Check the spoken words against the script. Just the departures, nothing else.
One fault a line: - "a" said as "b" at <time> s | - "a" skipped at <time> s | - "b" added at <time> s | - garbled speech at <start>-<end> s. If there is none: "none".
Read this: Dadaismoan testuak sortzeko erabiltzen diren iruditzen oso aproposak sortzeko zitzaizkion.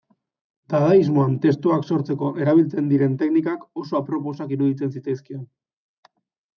- "iruditzen" said as "teknikak" at 3.2 s
- "sortzeko" said as "iruditzen" at 4.6 s